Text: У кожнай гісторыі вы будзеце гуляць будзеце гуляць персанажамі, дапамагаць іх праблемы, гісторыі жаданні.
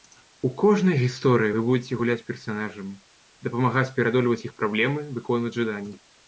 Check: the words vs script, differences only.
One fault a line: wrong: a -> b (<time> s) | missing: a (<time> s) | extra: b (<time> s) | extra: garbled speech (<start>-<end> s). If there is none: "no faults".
missing: будзеце гуляць (2.2 s)
extra: пераадольваць (4.0 s)
wrong: гісторыі -> выконваць (5.2 s)